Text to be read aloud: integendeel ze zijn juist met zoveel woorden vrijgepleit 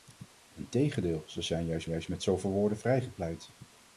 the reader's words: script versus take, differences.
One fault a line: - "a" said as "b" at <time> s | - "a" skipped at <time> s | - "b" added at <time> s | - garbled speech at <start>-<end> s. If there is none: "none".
- "juist" added at 1.9 s